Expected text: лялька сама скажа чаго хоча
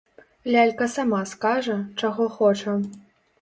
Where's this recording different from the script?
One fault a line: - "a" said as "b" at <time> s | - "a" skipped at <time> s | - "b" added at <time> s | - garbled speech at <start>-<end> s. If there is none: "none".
none